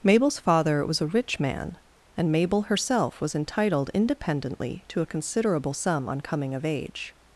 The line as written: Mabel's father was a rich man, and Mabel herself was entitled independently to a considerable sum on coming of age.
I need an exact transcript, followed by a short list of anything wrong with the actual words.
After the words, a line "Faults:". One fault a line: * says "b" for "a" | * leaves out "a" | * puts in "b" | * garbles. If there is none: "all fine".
Mabel's father was a rich man, and Mabel herself was entitled independently to a considerable sum on coming of age.
Faults:
all fine